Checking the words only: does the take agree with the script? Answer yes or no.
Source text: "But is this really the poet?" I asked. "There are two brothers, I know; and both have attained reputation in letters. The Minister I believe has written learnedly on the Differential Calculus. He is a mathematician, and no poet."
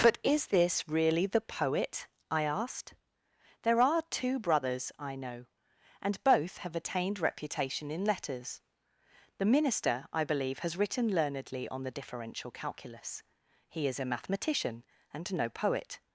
yes